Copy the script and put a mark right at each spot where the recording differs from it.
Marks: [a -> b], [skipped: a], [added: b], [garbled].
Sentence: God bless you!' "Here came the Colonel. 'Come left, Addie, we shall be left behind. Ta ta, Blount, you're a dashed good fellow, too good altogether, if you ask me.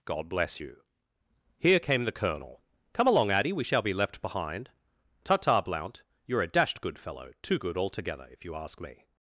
God bless you!' "Here came the Colonel. 'Come [left, -> along] Addie, we shall be left behind. Ta ta, Blount, you're a dashed good fellow, too good altogether, if you ask me.